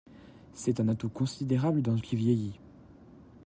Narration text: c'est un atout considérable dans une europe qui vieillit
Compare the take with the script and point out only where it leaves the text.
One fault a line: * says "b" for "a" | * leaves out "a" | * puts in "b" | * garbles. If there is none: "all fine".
* leaves out "une europe"